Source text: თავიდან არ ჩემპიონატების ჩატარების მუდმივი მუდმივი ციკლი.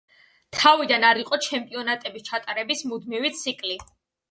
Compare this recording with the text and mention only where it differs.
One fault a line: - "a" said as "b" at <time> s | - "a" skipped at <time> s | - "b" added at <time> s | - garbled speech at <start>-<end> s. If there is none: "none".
- "იყო" added at 1.2 s
- "მუდმივი" skipped at 3.4 s